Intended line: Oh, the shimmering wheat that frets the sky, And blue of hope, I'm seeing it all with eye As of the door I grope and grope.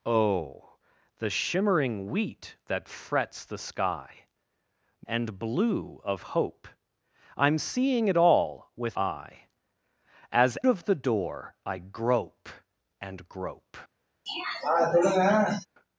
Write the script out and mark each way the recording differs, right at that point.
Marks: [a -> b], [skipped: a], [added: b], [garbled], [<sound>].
Oh, the shimmering wheat that frets the sky, And blue of hope, I'm seeing it all with eye As of the door I grope and grope. [throat clearing]